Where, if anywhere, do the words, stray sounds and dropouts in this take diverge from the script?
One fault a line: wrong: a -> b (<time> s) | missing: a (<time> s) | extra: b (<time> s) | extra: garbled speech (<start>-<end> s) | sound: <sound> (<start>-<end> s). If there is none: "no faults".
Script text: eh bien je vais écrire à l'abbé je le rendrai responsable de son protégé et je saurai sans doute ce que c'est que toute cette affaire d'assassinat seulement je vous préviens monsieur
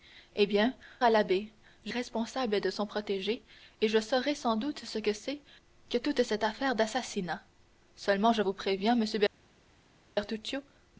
missing: je vais écrire (0.7 s)
missing: le rendrai (1.9 s)